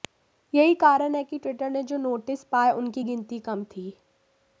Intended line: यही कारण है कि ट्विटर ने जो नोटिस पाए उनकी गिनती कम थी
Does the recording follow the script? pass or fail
pass